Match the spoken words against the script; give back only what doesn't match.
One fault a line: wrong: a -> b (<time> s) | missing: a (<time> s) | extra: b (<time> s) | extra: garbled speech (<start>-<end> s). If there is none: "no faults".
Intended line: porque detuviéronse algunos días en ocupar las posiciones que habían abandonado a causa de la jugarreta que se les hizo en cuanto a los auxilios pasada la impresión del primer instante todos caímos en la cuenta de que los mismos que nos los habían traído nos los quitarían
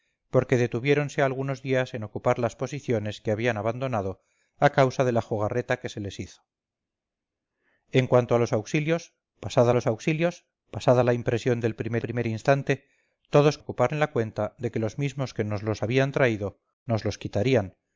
extra: los auxilios pasada (9.7 s)
extra: primer (12.0 s)
wrong: caímos -> ocupar (13.6 s)